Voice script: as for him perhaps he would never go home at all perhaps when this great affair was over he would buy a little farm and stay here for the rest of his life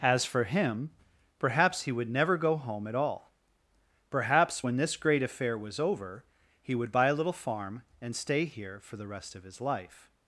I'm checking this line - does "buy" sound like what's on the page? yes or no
yes